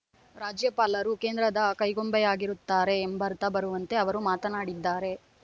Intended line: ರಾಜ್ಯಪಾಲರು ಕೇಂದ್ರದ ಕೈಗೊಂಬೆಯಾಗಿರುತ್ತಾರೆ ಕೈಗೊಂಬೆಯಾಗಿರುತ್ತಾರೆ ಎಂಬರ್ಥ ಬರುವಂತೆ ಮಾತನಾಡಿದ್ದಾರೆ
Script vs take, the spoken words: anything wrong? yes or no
yes